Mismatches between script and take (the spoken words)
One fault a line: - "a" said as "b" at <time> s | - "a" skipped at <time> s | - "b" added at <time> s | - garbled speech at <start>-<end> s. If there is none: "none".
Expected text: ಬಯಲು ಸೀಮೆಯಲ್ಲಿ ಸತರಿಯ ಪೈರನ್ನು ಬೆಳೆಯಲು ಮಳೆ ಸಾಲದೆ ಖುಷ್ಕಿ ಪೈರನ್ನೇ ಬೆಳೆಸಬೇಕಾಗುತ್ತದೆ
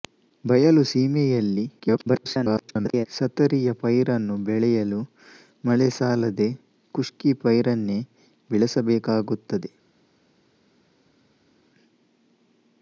- garbled speech at 1.8-3.1 s